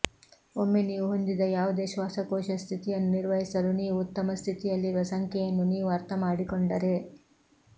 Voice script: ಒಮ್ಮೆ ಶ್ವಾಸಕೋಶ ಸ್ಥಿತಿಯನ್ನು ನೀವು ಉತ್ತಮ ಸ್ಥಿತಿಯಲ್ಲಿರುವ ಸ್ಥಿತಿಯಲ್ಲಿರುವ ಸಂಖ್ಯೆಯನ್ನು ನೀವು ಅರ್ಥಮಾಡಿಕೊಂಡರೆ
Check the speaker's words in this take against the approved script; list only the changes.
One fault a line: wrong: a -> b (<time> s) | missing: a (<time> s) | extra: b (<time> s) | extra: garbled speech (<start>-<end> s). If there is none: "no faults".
extra: ನೀವು ಹೊಂದಿದ ಯಾವುದೇ (0.8 s)
extra: ನಿರ್ವಹಿಸಲು (3.1 s)
missing: ಸ್ಥಿತಿಯಲ್ಲಿರುವ (5.0 s)